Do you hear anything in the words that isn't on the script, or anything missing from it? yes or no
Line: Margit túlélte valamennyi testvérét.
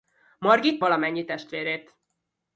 yes